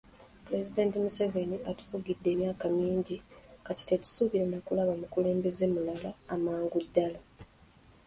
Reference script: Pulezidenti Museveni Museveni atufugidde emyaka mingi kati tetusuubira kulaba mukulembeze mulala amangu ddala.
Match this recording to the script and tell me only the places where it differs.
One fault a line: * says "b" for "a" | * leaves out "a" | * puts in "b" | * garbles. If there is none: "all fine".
* leaves out "Museveni"
* puts in "na"